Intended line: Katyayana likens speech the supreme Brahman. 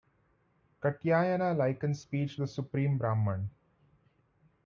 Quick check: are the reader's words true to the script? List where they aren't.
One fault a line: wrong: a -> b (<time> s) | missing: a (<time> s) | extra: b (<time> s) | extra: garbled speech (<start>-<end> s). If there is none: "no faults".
no faults